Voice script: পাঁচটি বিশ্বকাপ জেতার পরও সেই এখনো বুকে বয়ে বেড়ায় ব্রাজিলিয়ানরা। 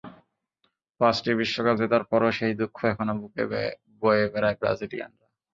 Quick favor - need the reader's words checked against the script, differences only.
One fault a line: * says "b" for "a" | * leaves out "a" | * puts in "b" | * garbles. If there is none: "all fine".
* puts in "দুঃখ"